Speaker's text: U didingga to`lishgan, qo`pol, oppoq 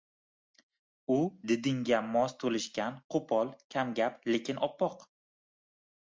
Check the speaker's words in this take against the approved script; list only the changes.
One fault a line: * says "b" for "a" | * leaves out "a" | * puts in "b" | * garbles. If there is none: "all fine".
* puts in "mos"
* puts in "kamgap lekin"